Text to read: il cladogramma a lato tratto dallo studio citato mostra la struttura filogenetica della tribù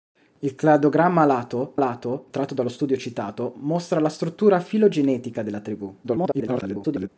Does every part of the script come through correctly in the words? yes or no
no